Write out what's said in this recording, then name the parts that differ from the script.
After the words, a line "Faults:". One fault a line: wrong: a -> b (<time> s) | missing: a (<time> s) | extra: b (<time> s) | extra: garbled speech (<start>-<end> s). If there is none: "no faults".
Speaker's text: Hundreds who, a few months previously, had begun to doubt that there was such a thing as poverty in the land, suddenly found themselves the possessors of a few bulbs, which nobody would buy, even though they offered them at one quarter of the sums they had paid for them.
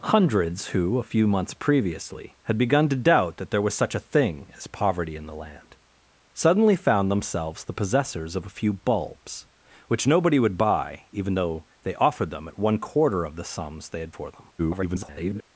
Hundreds who, a few months previously, had begun to doubt that there was such a thing as poverty in the land, suddenly found themselves the possessors of a few bulbs, which nobody would buy, even though they offered them at one quarter of the sums they had for them. [garbled]
Faults:
missing: paid (14.1 s)
extra: garbled speech (14.6-15.4 s)